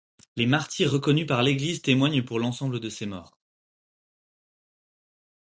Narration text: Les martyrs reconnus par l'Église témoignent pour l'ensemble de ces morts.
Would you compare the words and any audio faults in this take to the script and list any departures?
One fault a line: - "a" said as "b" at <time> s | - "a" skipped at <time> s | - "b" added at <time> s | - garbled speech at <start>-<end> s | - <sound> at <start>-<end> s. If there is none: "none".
none